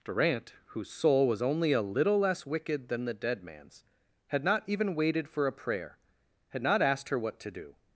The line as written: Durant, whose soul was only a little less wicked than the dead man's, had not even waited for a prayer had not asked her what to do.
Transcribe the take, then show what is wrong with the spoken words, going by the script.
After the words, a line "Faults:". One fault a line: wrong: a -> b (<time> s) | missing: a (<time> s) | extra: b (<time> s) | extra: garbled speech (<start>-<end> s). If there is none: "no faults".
Durant, whose soul was only a little less wicked than the dead man's, had not even waited for a prayer had not asked her what to do.
Faults:
no faults